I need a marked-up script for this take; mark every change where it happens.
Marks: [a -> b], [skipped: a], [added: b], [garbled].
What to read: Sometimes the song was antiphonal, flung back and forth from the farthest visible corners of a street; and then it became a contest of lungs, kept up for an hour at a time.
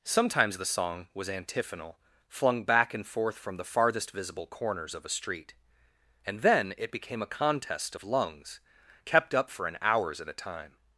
Sometimes the song was antiphonal, flung back and forth from the farthest visible corners of a street; and then it became a contest of lungs, kept up for an [hour -> hours] at a time.